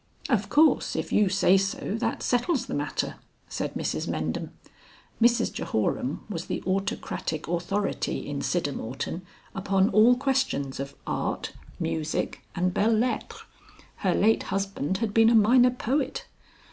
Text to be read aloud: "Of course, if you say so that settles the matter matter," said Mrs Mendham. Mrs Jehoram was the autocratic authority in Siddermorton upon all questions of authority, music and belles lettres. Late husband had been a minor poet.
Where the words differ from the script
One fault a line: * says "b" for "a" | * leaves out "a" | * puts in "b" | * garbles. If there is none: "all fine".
* leaves out "matter"
* says "art" for "authority"
* puts in "Her"